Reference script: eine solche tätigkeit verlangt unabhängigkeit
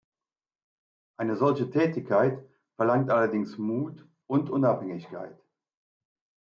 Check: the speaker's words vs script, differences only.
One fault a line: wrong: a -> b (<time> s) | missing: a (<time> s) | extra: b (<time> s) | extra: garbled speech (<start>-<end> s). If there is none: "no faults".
extra: allerdings mut und (3.1 s)